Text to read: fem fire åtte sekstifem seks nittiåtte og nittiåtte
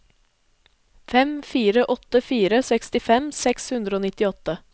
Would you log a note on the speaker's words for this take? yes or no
yes